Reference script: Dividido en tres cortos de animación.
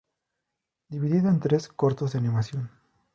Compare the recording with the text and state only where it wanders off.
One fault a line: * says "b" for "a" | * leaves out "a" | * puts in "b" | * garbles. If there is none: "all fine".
all fine